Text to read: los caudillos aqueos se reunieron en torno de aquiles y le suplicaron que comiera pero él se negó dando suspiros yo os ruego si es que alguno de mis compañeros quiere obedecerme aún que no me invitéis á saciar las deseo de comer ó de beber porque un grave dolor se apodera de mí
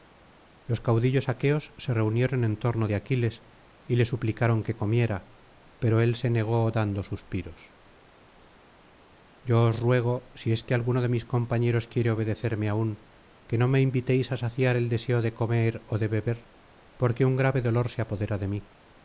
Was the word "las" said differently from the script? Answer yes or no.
yes